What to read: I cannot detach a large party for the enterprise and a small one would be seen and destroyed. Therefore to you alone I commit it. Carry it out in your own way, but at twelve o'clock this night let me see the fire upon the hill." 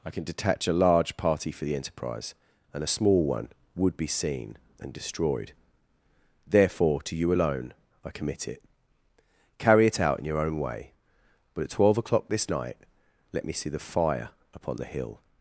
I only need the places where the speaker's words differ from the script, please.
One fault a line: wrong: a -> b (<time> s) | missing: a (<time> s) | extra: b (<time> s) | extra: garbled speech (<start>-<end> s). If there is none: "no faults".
wrong: cannot -> can (0.1 s)